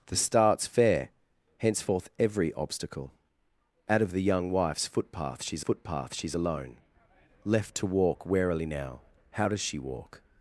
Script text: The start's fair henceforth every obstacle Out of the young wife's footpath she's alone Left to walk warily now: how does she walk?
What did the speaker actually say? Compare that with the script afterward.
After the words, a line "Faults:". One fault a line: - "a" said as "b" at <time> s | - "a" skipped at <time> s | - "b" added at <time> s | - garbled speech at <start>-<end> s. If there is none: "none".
The start's fair henceforth every obstacle Out of the young wife's footpath she's footpath she's alone Left to walk warily now: how does she walk?
Faults:
- "footpath she's" added at 5.6 s